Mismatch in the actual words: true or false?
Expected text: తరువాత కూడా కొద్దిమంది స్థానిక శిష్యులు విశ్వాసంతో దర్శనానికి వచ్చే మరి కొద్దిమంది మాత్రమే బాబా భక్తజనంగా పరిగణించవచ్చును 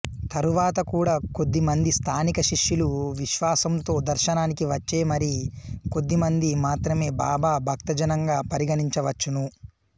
false